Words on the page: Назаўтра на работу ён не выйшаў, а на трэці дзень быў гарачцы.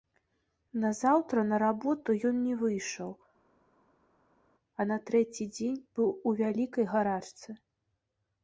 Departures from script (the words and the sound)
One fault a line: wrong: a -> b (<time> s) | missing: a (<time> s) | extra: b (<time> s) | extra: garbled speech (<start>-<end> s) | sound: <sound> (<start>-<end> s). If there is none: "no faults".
extra: у вялікай (6.3 s)